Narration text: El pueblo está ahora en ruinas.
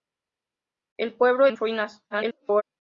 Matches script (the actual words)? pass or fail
fail